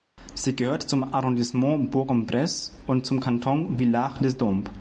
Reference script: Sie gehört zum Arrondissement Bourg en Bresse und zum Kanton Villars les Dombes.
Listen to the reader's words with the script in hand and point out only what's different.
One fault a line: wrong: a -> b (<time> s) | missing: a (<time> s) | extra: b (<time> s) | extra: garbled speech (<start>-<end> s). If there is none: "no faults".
no faults